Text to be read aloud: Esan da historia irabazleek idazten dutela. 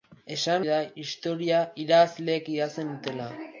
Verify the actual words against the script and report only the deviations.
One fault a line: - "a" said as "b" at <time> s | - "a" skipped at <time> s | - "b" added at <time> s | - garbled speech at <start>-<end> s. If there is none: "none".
none